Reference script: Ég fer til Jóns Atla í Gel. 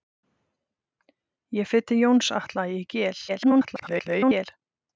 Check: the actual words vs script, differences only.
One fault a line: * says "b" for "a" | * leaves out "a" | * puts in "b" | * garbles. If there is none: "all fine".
* garbles